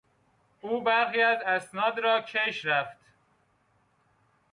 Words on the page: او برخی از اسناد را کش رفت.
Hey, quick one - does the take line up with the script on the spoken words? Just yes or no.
yes